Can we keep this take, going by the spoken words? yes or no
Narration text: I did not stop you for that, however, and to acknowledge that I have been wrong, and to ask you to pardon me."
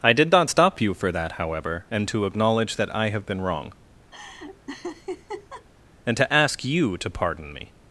yes